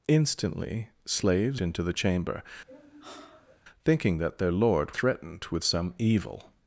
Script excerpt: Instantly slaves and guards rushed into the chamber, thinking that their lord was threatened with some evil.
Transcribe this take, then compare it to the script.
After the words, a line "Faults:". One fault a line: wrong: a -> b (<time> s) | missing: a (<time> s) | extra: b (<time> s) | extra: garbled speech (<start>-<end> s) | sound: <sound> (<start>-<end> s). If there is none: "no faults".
Instantly slaves into the chamber, thinking that their lord threatened with some evil.
Faults:
missing: and guards rushed (1.6 s)
sound: sigh (2.7-3.6 s)
missing: was (4.9 s)